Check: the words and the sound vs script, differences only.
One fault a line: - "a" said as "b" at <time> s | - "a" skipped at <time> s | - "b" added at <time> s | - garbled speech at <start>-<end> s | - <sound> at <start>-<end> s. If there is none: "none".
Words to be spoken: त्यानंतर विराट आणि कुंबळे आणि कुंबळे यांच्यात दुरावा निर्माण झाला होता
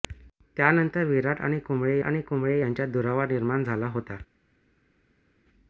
none